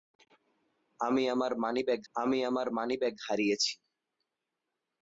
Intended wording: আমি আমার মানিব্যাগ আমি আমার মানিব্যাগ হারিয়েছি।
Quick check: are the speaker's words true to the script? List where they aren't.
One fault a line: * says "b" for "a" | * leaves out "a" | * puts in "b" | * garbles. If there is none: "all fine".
all fine